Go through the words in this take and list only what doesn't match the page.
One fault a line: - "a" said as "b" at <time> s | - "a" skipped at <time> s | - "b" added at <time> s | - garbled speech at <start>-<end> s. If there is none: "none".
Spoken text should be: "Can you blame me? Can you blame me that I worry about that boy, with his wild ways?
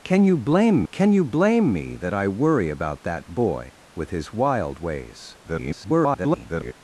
- "me" skipped at 0.8 s
- garbled speech at 5.4-6.7 s